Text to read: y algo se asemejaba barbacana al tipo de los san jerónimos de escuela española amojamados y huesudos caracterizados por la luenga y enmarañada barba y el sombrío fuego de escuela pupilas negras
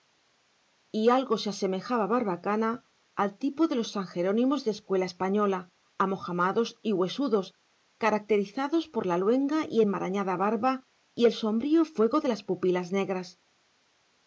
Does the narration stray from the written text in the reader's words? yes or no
yes